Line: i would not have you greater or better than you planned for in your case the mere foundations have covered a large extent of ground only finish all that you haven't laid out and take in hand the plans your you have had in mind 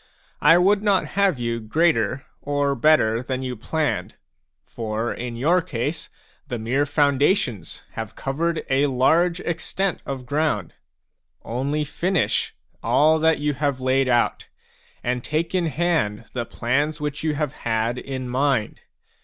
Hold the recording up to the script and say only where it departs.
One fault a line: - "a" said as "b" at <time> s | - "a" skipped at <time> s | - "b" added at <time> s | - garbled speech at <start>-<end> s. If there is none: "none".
- "haven't" said as "have" at 13.5 s
- "your" said as "which" at 17.0 s